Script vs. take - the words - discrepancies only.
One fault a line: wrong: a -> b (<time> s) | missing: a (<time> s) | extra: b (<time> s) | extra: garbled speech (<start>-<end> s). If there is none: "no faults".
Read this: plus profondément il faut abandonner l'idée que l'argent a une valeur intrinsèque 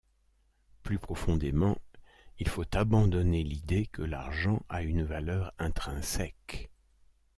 no faults